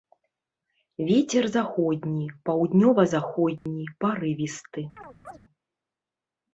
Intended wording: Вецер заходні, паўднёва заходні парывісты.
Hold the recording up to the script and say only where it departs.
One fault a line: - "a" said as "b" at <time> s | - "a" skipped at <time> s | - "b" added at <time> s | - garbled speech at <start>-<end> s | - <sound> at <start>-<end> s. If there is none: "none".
- dropout at 3.6-3.7 s
- chirp at 5.0-5.4 s